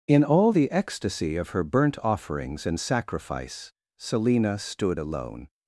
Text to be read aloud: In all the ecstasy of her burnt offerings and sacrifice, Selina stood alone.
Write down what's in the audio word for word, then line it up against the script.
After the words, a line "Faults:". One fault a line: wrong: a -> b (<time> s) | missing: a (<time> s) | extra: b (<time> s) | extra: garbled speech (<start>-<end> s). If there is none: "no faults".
In all the ecstasy of her burnt offerings and sacrifice, Selina stood alone.
Faults:
no faults